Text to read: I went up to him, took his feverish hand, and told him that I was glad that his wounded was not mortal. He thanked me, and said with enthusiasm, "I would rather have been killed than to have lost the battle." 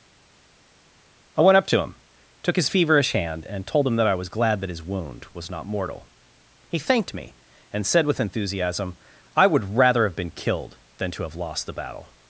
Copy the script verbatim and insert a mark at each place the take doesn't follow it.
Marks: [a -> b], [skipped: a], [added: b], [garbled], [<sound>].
I went up to him, took his feverish hand, and told him that I was glad that his [wounded -> wound] was not mortal. He thanked me, and said with enthusiasm, "I would rather have been killed than to have lost the battle."